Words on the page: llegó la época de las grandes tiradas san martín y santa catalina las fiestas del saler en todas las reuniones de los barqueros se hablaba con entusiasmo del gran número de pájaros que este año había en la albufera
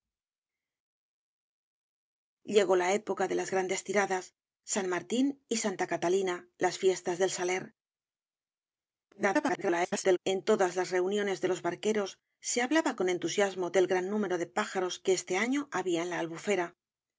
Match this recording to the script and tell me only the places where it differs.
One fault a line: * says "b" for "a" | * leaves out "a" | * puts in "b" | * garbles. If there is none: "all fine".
* garbles